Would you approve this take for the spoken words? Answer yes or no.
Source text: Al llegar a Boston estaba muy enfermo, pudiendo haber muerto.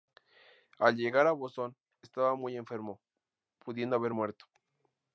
yes